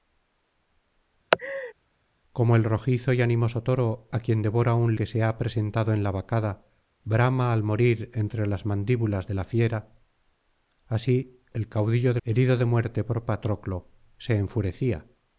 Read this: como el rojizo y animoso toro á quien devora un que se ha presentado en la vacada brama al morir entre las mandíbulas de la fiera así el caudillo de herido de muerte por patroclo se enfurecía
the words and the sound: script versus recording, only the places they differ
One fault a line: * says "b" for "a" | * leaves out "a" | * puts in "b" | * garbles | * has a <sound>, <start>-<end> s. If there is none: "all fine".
* has a laugh, 1.3-1.7 s